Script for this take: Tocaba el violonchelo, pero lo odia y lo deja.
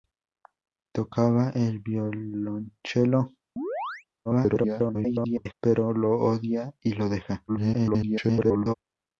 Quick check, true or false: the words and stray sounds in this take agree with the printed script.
false